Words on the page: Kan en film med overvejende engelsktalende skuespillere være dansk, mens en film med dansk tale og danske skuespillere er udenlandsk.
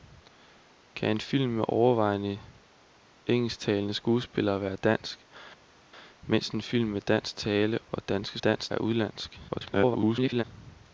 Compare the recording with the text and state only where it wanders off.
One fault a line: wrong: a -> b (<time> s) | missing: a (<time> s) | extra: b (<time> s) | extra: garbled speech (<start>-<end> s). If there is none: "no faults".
wrong: skuespillere -> dansk (8.4 s)
extra: garbled speech (9.5-10.4 s)